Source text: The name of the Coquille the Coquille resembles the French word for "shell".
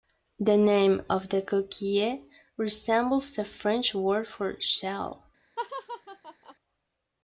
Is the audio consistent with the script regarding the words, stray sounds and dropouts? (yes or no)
no